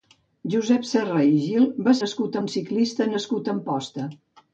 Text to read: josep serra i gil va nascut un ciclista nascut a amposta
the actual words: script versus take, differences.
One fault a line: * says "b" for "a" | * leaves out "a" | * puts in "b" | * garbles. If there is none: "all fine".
all fine